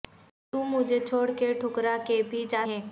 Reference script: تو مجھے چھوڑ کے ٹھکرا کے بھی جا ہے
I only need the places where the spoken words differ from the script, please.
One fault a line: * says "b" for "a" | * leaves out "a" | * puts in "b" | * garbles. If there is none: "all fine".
all fine